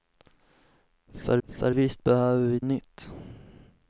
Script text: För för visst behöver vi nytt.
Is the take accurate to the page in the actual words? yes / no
yes